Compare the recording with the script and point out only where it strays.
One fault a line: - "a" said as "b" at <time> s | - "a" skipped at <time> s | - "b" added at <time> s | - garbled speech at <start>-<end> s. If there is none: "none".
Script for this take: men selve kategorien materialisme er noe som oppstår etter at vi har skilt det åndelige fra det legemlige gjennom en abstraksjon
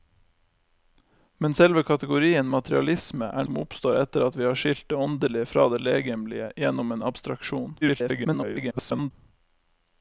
- "noe" skipped at 3.5 s
- garbled speech at 7.8-9.1 s